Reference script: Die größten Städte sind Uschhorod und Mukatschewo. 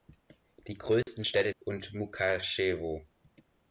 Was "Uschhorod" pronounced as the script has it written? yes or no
no